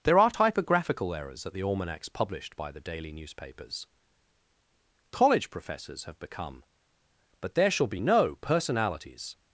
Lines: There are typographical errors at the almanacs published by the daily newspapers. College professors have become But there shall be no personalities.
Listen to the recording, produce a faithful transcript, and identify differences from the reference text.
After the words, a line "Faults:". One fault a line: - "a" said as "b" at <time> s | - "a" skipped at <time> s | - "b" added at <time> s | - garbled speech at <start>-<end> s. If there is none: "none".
There are typographical errors at the almanacs published by the daily newspapers. College professors have become But there shall be no personalities.
Faults:
none